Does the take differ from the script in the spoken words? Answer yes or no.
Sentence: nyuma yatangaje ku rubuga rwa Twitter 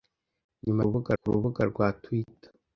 yes